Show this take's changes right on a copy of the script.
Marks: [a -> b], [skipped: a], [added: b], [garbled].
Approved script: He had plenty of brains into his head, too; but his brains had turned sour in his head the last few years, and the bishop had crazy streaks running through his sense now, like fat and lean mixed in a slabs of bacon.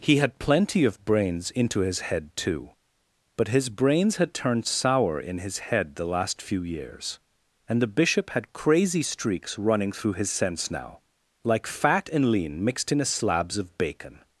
He had plenty of brains into his head, too; but his brains had turned sour in his head the last few years, and the bishop had crazy streaks running through his sense now, like fat and lean mixed in a slabs of bacon.